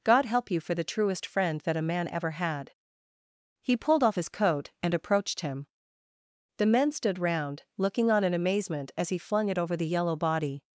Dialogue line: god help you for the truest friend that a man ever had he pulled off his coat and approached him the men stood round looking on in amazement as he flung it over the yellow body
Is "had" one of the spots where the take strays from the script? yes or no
no